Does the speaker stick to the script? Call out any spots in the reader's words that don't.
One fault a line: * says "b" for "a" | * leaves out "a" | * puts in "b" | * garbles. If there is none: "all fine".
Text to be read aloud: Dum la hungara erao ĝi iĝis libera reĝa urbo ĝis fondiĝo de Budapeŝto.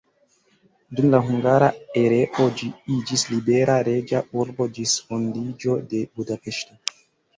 all fine